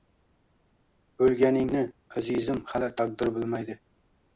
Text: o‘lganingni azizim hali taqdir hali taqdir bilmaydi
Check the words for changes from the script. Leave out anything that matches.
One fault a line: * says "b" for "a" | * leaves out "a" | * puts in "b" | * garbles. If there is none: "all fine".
* leaves out "hali taqdir"